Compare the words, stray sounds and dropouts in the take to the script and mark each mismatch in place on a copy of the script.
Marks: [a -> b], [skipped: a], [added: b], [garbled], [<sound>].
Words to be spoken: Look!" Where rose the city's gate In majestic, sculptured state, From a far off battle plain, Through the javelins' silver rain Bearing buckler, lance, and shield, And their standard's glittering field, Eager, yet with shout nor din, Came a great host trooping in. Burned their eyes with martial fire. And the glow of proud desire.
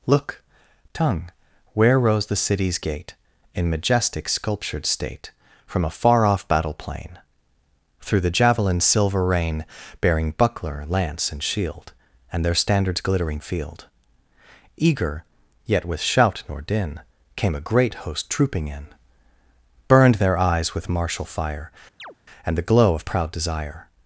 Look!" [added: tongue] Where rose the city's gate In majestic, sculptured state, From a far off battle plain, Through the javelins' silver rain Bearing buckler, lance, and shield, And their standard's glittering field, Eager, yet with shout nor din, Came a great host trooping in. Burned their eyes with martial fire. [chirp] And the glow of proud desire.